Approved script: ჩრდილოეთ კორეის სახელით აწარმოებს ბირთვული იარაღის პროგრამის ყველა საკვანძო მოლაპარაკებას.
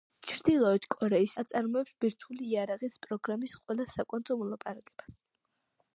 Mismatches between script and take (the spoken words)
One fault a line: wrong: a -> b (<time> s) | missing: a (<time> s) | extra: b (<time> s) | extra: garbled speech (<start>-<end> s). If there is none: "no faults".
missing: სახელით (1.4 s)